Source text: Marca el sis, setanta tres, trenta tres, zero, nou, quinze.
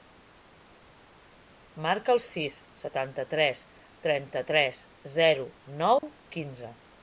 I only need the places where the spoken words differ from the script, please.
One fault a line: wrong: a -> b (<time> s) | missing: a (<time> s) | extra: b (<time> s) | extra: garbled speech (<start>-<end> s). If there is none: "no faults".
no faults